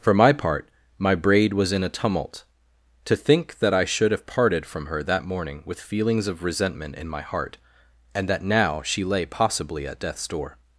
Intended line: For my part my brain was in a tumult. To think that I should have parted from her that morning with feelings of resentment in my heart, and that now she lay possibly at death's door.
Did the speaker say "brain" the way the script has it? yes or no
no